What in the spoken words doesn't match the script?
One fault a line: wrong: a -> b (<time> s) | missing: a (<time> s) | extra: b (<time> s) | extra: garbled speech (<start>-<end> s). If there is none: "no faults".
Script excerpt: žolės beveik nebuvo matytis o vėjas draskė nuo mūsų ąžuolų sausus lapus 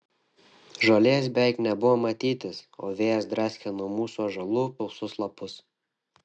no faults